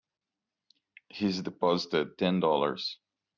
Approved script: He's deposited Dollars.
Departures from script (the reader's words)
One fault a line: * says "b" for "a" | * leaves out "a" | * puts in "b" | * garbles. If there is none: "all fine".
* puts in "Ten"